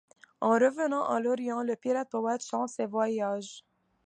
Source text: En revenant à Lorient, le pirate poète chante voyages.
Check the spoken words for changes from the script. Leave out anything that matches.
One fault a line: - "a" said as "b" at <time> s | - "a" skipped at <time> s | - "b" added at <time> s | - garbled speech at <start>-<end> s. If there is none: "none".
- "ses" added at 2.7 s